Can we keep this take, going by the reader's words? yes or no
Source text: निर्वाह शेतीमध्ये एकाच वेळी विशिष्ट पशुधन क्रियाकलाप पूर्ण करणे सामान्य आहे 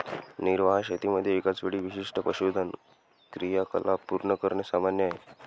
yes